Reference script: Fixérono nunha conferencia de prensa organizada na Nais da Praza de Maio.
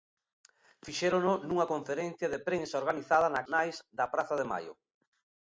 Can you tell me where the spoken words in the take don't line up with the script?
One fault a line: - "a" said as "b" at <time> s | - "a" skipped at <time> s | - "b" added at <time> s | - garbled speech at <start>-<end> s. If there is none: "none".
none